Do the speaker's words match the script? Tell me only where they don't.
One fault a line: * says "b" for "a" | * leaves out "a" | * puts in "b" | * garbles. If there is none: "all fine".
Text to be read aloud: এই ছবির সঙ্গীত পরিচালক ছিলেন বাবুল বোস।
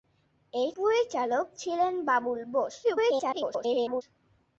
* leaves out "ছবির সঙ্গীত"
* garbles